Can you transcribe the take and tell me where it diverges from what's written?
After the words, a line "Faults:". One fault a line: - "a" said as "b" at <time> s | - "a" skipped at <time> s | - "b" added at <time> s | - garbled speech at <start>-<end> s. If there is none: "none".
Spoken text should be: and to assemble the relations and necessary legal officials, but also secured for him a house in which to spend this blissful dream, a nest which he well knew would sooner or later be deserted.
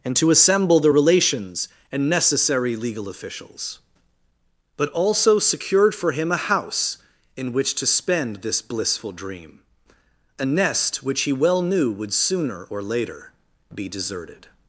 and to assemble the relations and necessary legal officials, but also secured for him a house in which to spend this blissful dream, a nest which he well knew would sooner or later be deserted.
Faults:
none